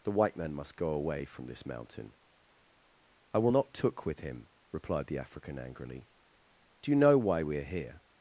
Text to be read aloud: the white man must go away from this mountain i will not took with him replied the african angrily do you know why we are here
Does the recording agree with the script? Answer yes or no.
yes